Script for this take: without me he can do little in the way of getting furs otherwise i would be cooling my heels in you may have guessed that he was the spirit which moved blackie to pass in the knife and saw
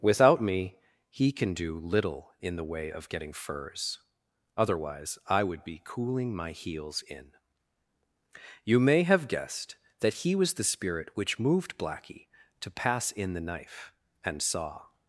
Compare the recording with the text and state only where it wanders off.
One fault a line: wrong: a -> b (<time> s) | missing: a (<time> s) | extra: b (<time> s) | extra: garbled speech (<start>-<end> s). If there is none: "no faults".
no faults